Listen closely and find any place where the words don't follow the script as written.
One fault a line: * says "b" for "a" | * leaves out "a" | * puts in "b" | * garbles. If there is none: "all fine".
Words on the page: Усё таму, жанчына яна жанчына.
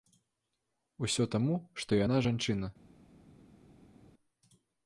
* says "што" for "жанчына"